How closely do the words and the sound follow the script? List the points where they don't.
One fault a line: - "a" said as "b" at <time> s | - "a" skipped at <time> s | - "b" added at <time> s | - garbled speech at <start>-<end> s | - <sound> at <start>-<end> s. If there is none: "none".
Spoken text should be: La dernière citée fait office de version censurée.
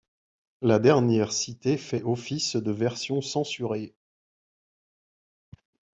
none